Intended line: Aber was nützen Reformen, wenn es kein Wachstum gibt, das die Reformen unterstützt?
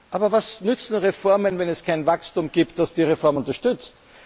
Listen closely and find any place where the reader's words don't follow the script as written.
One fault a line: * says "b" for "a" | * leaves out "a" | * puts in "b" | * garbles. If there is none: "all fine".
all fine